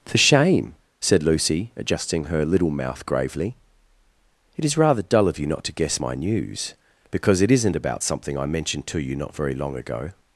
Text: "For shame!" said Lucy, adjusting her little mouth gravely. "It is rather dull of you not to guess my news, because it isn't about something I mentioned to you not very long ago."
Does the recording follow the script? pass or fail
pass